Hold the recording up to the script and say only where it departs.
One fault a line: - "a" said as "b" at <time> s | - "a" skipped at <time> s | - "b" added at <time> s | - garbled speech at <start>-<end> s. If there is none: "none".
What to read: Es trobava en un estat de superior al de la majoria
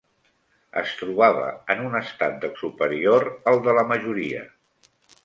none